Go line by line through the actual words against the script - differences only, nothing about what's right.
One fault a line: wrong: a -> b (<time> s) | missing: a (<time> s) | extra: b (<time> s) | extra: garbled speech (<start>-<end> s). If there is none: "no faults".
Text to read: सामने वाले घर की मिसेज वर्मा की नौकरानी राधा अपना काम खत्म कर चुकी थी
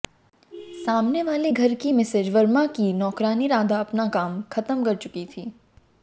no faults